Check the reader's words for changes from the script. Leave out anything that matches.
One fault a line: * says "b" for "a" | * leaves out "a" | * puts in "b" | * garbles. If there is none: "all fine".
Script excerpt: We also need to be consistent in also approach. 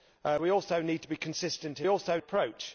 all fine